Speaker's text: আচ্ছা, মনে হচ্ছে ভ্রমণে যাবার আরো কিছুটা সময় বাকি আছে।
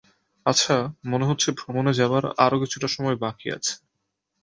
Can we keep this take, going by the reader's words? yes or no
yes